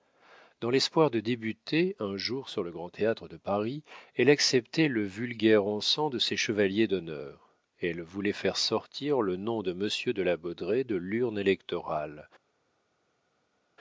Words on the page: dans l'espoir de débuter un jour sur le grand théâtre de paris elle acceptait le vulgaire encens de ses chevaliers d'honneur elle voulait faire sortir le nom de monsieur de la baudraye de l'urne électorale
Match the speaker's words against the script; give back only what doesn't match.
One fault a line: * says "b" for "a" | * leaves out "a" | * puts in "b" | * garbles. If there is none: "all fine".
all fine